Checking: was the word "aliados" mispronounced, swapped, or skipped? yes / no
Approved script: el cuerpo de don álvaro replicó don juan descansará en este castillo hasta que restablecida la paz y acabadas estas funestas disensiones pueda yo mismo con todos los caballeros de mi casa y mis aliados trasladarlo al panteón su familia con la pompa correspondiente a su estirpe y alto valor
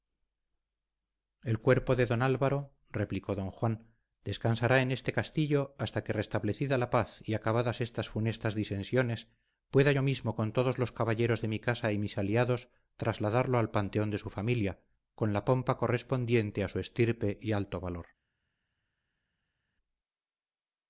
no